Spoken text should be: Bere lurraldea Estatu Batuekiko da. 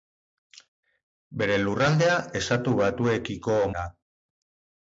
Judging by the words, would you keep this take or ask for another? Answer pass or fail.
pass